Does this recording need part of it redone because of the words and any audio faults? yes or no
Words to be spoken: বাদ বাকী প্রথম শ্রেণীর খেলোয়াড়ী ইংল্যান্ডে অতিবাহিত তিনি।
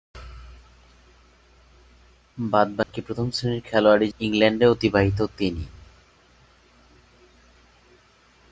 yes